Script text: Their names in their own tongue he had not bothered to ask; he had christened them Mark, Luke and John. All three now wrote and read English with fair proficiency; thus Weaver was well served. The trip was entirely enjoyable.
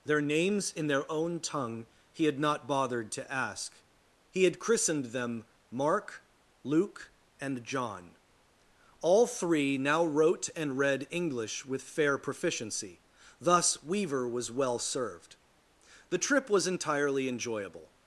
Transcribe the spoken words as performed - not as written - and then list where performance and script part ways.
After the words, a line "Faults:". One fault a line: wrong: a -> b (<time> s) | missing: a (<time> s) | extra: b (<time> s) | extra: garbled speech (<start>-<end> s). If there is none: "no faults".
Their names in their own tongue he had not bothered to ask; he had christened them Mark, Luke and John. All three now wrote and read English with fair proficiency; thus Weaver was well served. The trip was entirely enjoyable.
Faults:
no faults